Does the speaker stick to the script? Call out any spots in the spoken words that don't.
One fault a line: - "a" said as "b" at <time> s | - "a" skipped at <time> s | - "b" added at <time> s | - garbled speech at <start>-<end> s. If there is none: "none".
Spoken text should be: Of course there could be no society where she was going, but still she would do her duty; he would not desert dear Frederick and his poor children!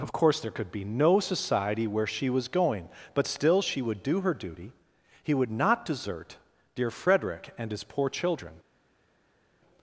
none